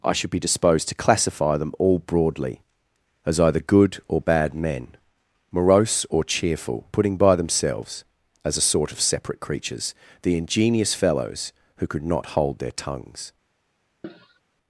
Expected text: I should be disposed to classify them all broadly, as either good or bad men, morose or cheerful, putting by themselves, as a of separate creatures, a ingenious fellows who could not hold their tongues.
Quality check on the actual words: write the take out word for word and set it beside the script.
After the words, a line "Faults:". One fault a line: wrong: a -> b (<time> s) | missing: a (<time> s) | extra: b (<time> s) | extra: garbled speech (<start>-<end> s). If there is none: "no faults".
I should be disposed to classify them all broadly, as either good or bad men, morose or cheerful, putting by themselves, as a sort of separate creatures, the ingenious fellows who could not hold their tongues.
Faults:
extra: sort (8.6 s)
wrong: a -> the (10.2 s)